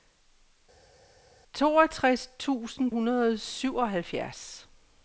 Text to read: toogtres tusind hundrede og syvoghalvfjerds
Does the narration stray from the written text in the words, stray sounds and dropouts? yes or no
no